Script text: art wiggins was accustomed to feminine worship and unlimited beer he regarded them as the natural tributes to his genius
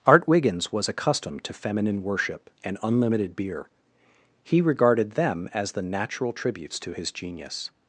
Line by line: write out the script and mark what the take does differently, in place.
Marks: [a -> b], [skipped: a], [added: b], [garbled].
art wiggins was accustomed to feminine worship and unlimited beer he regarded them as the natural tributes to his genius